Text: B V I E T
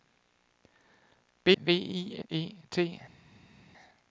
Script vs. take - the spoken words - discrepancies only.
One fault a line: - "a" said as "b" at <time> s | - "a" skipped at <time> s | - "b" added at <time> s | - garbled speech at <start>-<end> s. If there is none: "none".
none